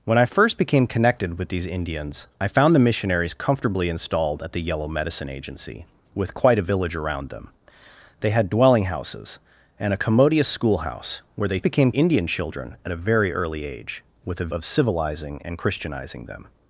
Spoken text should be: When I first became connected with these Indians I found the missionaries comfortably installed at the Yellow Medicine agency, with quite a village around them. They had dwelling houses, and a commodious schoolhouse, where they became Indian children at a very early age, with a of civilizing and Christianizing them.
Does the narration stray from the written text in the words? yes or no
no